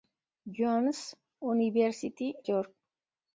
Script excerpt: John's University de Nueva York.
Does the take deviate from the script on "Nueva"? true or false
true